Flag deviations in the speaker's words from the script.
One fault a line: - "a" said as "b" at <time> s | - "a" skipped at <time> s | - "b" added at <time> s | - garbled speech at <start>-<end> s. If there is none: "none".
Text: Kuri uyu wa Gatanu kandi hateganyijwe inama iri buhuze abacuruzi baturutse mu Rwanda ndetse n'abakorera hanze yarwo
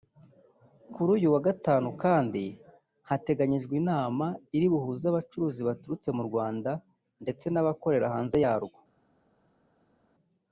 none